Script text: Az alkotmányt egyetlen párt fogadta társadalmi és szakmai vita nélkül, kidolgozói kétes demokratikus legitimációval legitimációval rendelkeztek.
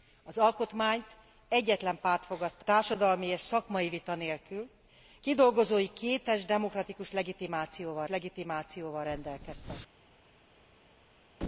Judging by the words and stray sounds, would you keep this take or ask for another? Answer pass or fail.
pass